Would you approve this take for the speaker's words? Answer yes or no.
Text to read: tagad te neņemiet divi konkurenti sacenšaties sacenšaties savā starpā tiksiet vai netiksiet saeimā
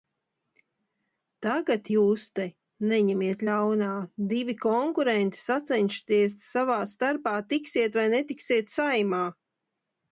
no